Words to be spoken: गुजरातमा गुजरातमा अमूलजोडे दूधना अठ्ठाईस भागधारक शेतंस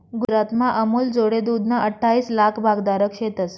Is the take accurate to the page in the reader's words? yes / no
no